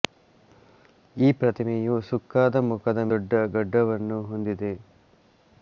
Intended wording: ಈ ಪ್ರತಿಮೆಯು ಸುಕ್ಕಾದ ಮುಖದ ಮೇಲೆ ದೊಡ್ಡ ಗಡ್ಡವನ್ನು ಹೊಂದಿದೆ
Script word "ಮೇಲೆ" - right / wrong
wrong